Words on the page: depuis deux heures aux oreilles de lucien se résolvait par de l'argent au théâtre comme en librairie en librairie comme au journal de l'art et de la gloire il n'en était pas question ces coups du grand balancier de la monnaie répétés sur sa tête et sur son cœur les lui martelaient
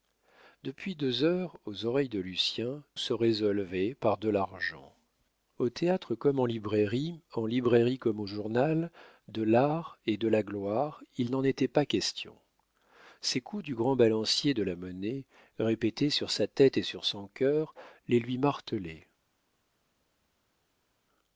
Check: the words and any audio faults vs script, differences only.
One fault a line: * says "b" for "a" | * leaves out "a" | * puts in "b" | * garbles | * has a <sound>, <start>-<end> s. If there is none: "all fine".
all fine